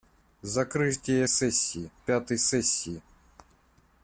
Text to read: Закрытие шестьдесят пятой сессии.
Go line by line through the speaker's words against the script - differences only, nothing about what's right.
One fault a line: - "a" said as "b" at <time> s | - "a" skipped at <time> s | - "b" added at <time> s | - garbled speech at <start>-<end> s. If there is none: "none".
- "шестьдесят" said as "сессии" at 1.3 s